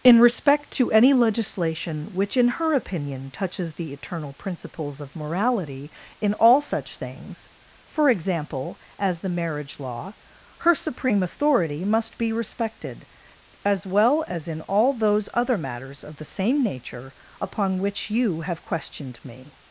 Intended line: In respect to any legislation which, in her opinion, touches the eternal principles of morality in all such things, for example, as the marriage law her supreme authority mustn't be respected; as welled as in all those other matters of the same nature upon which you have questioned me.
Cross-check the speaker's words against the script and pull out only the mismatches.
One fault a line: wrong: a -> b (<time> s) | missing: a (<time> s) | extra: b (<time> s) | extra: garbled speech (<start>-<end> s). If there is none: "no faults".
wrong: mustn't -> must (11.8 s)
wrong: welled -> well (13.8 s)